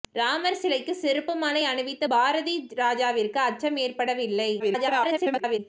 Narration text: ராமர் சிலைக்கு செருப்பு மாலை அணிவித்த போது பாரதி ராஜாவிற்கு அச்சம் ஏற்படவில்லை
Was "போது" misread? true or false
true